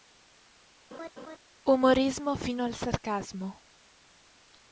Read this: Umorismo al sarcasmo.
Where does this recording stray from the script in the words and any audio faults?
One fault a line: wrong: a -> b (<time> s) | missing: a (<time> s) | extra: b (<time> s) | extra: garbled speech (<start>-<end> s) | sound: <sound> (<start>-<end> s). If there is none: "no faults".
sound: laugh (0.9-1.4 s)
extra: fino (2.3 s)